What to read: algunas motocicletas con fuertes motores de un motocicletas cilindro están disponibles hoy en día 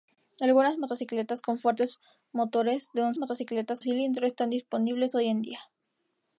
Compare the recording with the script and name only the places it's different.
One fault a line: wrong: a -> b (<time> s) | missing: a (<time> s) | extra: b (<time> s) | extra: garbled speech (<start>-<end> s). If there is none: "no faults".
no faults